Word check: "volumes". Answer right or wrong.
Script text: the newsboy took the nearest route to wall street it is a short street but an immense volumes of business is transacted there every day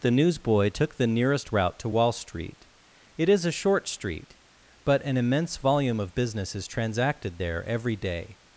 wrong